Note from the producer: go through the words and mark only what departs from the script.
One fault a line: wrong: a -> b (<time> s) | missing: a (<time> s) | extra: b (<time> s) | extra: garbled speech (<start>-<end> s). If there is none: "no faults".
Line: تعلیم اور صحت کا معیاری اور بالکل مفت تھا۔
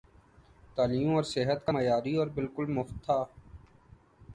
no faults